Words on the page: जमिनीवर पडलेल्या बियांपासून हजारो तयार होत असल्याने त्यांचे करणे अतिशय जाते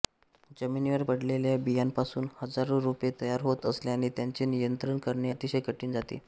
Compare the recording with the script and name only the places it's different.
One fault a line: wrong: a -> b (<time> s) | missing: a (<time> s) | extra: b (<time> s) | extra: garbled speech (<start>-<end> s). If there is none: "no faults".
extra: रोपे (2.8 s)
extra: नियंत्रण (4.5 s)
extra: कठीण (5.6 s)